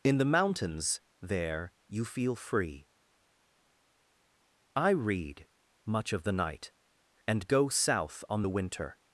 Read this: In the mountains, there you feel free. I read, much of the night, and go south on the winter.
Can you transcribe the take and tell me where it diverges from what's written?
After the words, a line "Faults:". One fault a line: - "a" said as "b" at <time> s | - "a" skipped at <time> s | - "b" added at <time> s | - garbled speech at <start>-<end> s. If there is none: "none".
In the mountains, there you feel free. I read, much of the night, and go south on the winter.
Faults:
none